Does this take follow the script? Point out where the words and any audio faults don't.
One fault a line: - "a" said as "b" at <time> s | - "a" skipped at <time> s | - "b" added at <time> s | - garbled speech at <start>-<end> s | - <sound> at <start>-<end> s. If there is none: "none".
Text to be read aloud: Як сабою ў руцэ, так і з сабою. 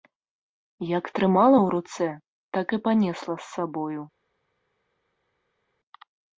- "сабою" said as "трымала" at 1.2 s
- "панесла" added at 2.9 s